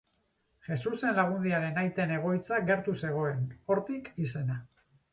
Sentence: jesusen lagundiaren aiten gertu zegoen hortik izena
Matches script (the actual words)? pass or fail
fail